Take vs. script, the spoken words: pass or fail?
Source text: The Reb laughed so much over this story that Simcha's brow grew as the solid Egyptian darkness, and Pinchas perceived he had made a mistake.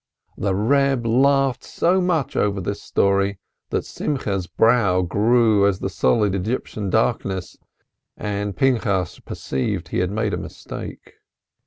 pass